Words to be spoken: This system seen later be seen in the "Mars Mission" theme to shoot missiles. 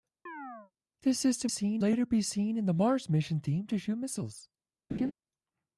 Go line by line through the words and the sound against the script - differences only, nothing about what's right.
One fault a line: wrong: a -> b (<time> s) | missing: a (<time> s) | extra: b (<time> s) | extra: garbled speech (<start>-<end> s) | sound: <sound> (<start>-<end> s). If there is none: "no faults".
sound: chirp (0.3-0.7 s)
sound: laugh (4.9-5.1 s)